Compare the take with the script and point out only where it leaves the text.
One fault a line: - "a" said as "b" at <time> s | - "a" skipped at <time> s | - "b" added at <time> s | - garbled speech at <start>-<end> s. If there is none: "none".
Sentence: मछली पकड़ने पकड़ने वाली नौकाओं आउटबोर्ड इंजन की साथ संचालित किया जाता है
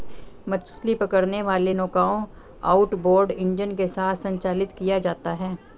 - "पकड़ने" skipped at 1.4 s
- "की" said as "के" at 3.7 s